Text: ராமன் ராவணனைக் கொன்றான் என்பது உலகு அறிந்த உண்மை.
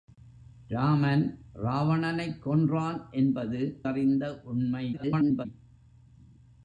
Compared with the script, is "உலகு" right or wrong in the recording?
wrong